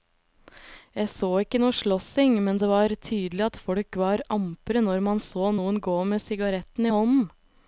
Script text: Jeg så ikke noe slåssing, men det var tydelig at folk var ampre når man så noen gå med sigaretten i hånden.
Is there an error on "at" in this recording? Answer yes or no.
no